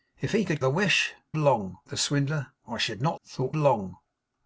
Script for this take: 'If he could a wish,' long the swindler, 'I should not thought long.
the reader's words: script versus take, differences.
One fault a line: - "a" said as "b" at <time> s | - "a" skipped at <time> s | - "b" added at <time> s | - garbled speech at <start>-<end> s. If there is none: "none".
none